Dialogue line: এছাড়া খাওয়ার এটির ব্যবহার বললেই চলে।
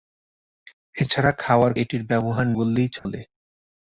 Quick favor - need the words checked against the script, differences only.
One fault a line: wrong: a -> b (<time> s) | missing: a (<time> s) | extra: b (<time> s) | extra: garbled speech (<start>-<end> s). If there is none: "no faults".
no faults